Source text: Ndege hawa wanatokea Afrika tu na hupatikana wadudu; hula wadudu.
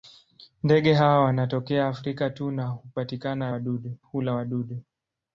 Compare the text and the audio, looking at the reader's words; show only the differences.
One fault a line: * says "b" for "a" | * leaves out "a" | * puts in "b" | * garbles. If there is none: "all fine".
all fine